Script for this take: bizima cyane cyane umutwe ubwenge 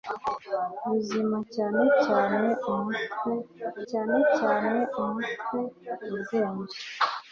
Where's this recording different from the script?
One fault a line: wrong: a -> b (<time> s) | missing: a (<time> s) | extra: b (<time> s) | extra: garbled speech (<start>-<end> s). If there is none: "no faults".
extra: cyane cyane umutwe (3.9 s)